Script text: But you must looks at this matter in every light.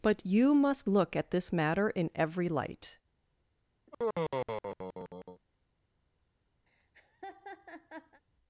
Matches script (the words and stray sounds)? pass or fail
fail